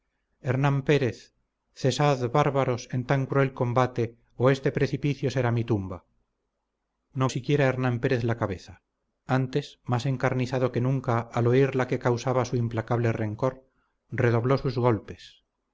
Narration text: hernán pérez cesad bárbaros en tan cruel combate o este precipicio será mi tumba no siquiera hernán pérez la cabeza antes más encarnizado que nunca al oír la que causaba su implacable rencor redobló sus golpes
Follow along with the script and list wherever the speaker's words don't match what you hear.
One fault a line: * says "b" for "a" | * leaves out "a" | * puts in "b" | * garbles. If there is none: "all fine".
all fine